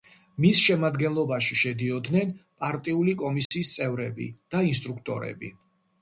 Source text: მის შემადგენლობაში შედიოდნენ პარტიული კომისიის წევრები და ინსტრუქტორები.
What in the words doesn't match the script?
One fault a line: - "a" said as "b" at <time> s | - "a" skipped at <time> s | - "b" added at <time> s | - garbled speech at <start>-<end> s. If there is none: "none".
none